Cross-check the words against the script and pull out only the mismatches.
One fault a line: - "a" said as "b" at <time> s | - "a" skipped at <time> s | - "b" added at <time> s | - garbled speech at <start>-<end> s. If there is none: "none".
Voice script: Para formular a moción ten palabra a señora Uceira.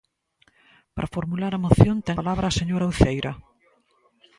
none